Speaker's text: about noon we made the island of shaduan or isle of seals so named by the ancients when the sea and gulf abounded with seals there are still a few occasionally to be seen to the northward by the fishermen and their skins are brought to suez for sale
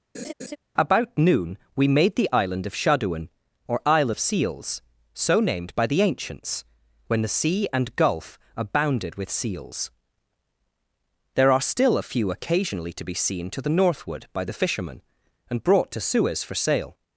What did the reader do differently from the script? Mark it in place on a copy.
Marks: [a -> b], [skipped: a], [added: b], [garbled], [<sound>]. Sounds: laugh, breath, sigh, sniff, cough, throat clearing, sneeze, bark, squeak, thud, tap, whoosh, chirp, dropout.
[laugh] about noon we made the island of shaduan or isle of seals so named by the ancients when the sea and gulf abounded with seals there are still a few occasionally to be seen to the northward by the fishermen and [skipped: their skins are] brought to suez for sale